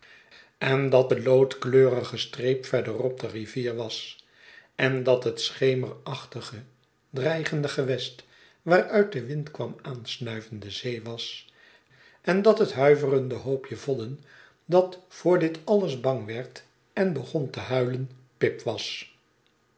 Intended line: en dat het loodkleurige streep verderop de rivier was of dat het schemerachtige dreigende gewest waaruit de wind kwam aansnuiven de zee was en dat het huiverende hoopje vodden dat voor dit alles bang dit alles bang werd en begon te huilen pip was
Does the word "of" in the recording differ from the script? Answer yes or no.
yes